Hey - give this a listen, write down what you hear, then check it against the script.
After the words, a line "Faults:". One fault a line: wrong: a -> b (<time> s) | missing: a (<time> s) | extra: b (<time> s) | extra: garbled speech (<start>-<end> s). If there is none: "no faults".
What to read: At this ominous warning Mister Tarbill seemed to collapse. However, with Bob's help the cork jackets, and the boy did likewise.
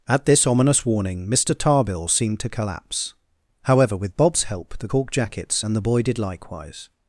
At this ominous warning Mister Tarbill seemed to collapse. However, with Bob's help the cork jackets, and the boy did likewise.
Faults:
no faults